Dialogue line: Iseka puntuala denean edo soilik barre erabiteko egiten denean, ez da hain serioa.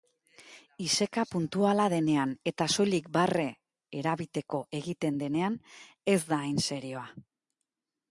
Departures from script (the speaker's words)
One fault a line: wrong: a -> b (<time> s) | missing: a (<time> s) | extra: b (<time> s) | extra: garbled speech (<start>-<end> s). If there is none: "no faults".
wrong: edo -> eta (2.5 s)